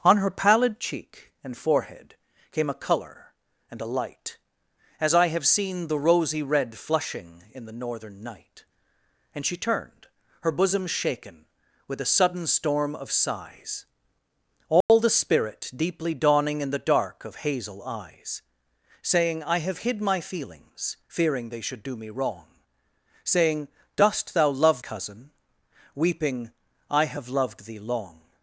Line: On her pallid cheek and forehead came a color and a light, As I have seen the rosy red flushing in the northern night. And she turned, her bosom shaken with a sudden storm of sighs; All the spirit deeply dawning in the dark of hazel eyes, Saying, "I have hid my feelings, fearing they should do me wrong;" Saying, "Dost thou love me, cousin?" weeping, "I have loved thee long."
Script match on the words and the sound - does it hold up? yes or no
no